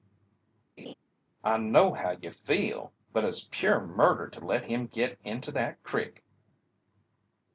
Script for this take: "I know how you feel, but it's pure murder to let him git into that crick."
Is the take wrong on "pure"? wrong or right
right